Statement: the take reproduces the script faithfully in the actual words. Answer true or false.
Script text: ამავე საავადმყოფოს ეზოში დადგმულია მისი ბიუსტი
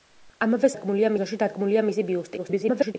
false